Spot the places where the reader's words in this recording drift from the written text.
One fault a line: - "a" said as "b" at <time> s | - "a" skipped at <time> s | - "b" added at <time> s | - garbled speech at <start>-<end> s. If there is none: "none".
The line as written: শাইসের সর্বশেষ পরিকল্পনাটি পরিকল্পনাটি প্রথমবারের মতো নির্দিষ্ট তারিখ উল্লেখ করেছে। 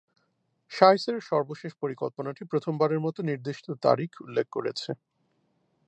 - "পরিকল্পনাটি" skipped at 2.4 s